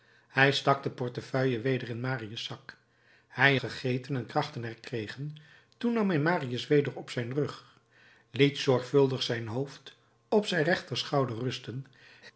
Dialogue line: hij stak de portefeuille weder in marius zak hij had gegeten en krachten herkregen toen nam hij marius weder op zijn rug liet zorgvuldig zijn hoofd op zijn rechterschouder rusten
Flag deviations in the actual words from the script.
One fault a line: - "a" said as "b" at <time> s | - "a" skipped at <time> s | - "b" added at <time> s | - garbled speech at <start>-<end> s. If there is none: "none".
- "had" skipped at 3.6 s